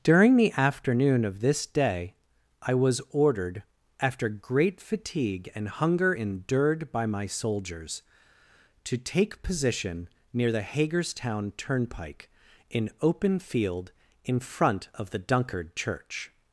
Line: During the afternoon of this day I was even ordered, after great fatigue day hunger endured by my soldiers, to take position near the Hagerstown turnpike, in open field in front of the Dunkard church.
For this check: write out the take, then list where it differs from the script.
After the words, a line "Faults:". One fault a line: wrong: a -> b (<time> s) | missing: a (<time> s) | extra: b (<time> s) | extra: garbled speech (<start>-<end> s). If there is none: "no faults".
During the afternoon of this day I was ordered, after great fatigue and hunger endured by my soldiers, to take position near the Hagerstown turnpike, in open field in front of the Dunkard church.
Faults:
missing: even (3.0 s)
wrong: day -> and (5.5 s)